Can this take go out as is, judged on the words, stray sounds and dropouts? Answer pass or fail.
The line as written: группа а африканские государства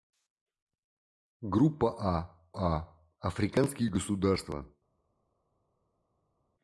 fail